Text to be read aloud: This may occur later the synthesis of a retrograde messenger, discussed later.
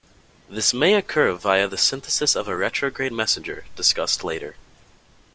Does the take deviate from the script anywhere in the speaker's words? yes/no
yes